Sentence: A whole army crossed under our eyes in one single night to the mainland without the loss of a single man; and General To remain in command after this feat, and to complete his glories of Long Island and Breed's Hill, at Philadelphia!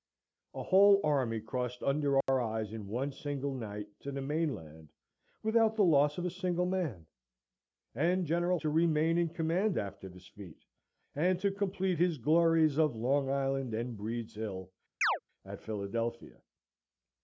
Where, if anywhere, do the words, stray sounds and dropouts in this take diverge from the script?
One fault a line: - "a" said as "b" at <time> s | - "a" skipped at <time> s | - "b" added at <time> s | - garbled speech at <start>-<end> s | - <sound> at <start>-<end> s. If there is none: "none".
- dropout at 2.2-2.3 s
- chirp at 15.0-15.2 s